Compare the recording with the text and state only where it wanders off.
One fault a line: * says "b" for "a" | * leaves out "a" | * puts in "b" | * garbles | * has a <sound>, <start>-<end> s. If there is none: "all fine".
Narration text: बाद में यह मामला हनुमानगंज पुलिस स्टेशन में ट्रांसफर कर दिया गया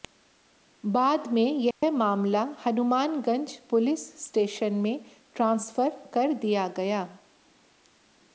* has a dropout, 1.7-1.8 s